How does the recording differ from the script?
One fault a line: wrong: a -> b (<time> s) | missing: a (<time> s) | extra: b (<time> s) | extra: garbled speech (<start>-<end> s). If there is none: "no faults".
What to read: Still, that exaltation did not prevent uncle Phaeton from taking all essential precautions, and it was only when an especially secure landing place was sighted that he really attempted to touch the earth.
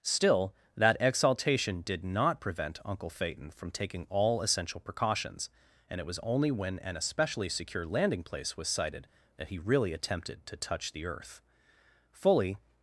extra: Fully (12.1 s)